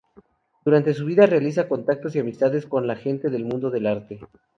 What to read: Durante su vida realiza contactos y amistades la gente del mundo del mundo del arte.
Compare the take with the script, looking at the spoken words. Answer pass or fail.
fail